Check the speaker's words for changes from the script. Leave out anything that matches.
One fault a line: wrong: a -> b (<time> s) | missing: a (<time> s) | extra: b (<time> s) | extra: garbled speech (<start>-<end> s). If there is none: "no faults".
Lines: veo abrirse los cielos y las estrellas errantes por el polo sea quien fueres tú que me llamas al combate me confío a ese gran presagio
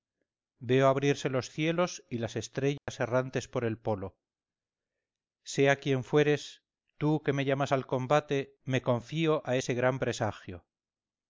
no faults